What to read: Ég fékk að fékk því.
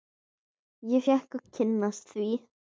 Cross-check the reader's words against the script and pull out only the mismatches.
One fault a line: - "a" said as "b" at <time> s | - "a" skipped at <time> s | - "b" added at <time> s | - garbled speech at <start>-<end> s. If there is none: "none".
- "fékk" said as "kynnast" at 1.6 s